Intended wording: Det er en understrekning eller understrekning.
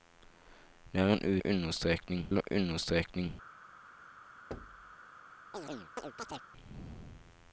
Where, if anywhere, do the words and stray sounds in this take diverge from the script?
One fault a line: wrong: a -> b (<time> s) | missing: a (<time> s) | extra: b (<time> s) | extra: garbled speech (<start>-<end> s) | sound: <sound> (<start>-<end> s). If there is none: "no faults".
sound: thud (4.5-4.9 s)
sound: chirp (5.5-6.5 s)